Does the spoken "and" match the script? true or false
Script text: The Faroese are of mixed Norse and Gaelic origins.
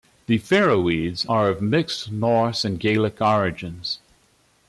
true